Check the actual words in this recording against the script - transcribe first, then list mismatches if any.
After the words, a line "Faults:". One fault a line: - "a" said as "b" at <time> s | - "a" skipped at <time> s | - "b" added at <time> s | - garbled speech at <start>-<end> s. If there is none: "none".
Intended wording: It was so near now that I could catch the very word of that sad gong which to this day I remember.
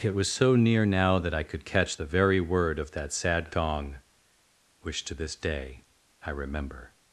It was so near now that I could catch the very word of that sad gong which to this day I remember.
Faults:
none